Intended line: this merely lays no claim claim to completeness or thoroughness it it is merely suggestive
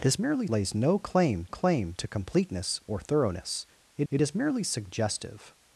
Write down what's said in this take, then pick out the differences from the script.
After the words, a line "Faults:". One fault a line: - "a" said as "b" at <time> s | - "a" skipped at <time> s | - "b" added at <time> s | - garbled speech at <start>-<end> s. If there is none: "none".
this merely lays no claim claim to completeness or thoroughness it it is merely suggestive
Faults:
none